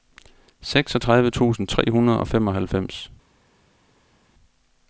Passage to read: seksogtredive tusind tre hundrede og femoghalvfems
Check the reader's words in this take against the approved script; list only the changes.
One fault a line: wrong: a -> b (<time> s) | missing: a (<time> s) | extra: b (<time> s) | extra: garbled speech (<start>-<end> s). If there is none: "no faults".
no faults